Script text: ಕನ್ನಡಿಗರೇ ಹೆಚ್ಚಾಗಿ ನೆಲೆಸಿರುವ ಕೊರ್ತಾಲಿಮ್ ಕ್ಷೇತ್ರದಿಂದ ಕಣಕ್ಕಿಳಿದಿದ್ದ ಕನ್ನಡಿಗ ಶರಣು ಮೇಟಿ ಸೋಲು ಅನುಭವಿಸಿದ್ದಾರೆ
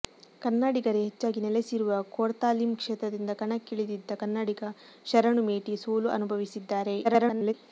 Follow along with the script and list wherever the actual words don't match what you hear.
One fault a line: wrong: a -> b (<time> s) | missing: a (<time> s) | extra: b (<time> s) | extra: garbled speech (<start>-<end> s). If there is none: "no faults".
extra: garbled speech (7.0-7.5 s)